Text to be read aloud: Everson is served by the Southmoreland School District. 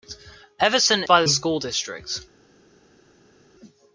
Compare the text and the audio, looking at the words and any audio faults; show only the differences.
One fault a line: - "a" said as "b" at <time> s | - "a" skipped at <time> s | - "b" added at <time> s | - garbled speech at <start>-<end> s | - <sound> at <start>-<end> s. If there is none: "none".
- "is served" skipped at 1.0 s
- "Southmoreland" skipped at 1.3 s